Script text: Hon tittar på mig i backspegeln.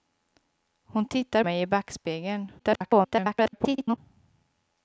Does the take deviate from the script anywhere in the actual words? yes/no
yes